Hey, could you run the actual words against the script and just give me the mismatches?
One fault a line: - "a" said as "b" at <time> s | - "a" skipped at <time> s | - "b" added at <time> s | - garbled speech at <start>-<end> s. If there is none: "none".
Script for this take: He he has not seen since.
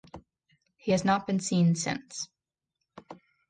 - "he" skipped at 0.9 s
- "been" added at 1.3 s